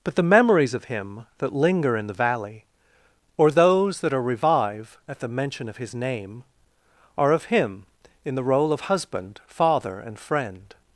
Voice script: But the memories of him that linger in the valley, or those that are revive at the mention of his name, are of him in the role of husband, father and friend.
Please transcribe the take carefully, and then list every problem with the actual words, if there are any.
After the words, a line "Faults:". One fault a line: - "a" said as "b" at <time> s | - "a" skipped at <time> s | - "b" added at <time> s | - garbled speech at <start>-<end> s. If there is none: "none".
But the memories of him that linger in the valley, or those that are revive at the mention of his name, are of him in the role of husband, father and friend.
Faults:
none